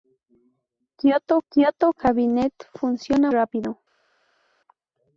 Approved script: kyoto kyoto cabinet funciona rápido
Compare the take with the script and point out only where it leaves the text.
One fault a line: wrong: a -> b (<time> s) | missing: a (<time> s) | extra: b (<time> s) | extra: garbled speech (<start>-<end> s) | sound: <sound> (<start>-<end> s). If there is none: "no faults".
no faults